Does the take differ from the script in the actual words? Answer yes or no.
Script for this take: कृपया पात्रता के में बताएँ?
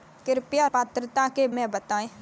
no